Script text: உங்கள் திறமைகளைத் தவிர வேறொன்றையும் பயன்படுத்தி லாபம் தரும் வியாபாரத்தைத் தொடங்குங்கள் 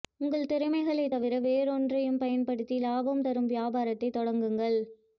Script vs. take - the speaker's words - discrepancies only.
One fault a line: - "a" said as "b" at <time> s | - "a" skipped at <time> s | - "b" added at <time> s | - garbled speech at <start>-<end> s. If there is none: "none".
none